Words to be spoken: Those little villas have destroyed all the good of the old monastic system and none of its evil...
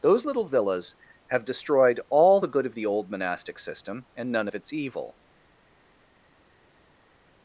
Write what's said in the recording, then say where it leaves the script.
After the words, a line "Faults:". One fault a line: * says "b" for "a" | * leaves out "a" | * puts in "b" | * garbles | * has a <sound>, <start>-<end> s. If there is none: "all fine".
Those little villas have destroyed all the good of the old monastic system and none of its evil...
Faults:
all fine